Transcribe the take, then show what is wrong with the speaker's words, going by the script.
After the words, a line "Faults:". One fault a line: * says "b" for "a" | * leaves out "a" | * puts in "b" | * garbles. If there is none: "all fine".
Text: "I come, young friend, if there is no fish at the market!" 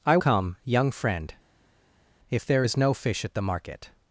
"I come, young friend, if there is no fish at the market!"
Faults:
all fine